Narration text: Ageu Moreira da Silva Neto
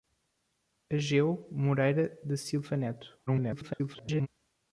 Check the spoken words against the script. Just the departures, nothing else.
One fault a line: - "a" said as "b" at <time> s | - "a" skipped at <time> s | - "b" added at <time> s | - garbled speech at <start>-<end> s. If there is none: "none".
- garbled speech at 3.3-4.3 s